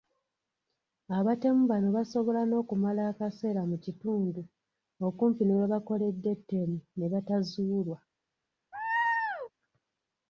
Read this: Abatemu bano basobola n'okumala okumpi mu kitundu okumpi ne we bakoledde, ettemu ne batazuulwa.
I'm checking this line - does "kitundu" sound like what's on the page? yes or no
yes